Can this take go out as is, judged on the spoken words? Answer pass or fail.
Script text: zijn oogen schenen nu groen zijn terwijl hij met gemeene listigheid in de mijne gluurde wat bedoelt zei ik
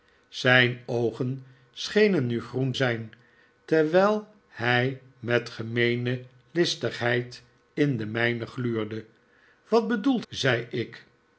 pass